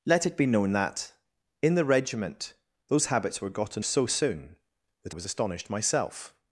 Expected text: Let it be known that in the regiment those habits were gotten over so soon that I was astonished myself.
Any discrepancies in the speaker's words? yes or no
yes